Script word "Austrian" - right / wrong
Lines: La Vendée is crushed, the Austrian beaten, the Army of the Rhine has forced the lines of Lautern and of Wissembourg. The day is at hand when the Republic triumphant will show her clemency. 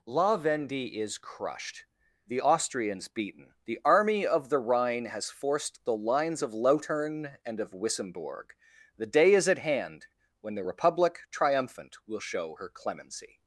wrong